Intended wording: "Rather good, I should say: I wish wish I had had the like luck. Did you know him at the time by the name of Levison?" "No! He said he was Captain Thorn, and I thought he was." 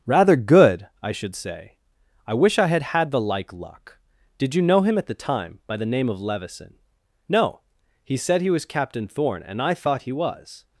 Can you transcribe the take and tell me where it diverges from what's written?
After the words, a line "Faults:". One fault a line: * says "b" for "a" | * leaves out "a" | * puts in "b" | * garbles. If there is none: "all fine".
"Rather good, I should say: I wish I had had the like luck. Did you know him at the time by the name of Levison?" "No! He said he was Captain Thorn, and I thought he was."
Faults:
* leaves out "wish"